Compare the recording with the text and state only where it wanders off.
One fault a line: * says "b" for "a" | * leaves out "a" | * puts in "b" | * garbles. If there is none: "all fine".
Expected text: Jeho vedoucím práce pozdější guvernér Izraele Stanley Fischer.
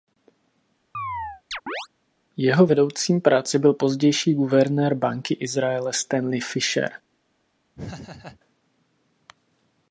* puts in "byl"
* puts in "Banky"